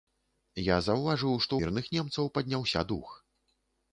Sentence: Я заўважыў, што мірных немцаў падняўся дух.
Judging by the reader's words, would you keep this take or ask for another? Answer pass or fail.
pass